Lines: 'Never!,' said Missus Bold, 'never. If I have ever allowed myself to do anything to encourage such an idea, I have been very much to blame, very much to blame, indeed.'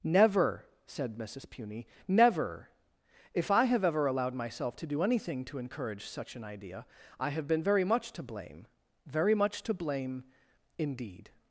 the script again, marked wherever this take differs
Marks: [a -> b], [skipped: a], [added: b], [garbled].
'Never!,' said Missus [Bold, -> Puny] 'never. If I have ever allowed myself to do anything to encourage such an idea, I have been very much to blame, very much to blame, indeed.'